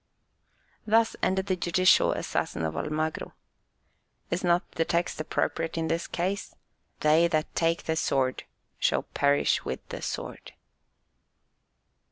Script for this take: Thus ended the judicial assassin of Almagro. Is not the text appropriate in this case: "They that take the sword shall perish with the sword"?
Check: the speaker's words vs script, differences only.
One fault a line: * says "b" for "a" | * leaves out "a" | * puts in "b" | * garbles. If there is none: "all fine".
all fine